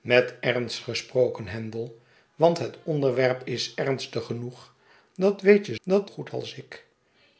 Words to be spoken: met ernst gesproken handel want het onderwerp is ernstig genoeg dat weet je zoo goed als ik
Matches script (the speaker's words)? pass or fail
fail